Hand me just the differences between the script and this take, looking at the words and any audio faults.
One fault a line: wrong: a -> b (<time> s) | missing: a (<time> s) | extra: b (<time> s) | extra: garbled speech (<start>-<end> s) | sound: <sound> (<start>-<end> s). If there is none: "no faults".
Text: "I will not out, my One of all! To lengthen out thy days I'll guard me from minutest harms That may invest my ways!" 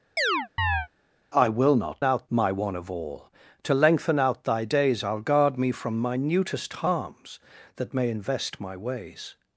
sound: chirp (0.2-0.9 s)